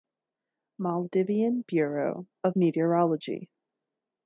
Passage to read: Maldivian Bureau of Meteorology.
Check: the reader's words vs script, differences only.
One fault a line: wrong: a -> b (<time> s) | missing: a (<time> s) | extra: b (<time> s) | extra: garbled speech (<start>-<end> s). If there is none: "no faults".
no faults